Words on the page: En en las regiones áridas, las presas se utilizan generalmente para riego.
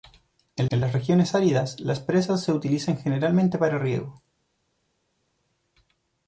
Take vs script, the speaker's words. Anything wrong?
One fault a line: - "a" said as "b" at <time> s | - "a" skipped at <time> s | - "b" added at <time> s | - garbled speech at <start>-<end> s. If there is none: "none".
none